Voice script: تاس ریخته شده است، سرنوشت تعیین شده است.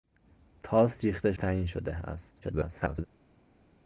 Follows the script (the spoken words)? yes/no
no